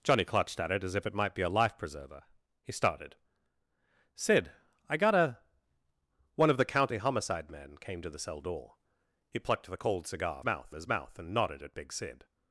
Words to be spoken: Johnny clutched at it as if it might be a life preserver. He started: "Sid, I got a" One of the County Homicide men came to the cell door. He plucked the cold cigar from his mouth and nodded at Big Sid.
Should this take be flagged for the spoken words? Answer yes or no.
yes